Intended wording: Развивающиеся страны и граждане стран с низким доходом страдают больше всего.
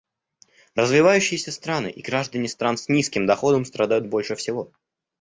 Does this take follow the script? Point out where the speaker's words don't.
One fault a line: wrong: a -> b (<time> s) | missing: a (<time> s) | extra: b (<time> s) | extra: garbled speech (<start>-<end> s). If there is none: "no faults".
no faults